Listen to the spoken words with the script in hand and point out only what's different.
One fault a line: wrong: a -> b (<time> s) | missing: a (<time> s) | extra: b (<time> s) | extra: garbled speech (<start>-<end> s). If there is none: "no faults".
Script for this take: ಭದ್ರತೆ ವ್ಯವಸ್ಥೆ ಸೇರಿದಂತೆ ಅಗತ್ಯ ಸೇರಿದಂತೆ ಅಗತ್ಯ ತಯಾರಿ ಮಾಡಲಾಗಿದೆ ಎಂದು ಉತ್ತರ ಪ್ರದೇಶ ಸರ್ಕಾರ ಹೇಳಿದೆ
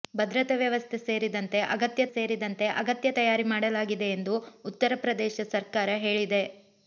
no faults